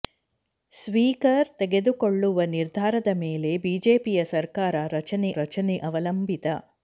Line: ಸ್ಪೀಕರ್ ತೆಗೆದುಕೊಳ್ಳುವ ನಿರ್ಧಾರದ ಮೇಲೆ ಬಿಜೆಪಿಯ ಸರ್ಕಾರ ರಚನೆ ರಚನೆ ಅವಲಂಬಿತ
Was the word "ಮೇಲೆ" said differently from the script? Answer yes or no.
no